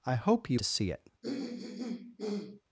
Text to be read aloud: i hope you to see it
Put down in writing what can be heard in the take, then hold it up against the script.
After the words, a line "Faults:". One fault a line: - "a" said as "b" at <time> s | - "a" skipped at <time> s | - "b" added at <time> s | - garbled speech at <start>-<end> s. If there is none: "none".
i hope you to see it
Faults:
none